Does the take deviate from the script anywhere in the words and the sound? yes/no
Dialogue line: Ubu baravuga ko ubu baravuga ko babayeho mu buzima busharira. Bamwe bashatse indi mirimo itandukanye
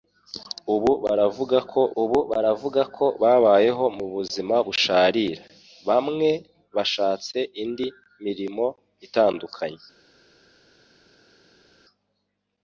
no